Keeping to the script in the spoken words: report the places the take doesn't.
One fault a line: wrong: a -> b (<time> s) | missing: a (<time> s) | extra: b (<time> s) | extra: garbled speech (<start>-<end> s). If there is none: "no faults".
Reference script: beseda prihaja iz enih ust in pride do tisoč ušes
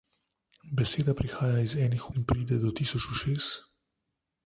missing: ust (2.0 s)